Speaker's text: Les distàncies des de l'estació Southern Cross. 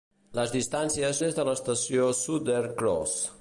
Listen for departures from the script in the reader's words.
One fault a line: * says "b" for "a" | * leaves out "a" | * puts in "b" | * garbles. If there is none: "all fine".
all fine